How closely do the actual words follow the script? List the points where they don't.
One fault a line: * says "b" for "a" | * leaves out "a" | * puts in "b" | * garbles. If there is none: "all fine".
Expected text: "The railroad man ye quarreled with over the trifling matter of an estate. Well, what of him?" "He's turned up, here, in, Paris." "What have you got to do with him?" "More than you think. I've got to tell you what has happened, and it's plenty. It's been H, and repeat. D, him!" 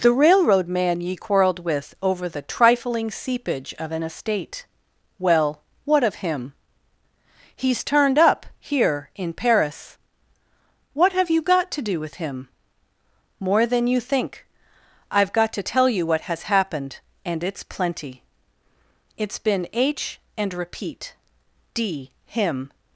* says "seepage" for "matter"